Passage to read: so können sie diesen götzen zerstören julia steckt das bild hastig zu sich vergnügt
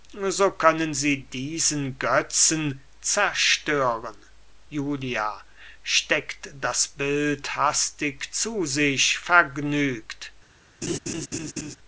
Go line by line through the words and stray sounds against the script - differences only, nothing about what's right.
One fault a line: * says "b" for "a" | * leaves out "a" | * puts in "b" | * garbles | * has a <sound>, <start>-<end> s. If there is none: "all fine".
* has a laugh, 10.8-11.8 s